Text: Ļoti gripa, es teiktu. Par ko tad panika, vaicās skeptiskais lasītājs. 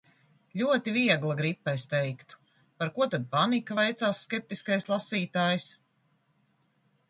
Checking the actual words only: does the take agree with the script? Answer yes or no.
no